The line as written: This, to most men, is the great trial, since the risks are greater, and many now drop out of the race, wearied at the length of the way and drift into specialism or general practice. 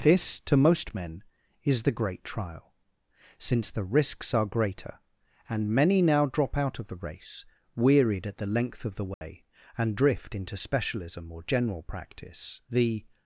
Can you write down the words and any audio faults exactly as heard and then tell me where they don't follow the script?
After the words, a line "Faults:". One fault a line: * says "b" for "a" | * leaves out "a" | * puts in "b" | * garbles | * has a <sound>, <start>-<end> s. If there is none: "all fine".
This, to most men, is the great trial, since the risks are greater, and many now drop out of the race, wearied at the length of the way and drift into specialism or general practice. The
Faults:
* has a dropout, 9.1-9.2 s
* puts in "The"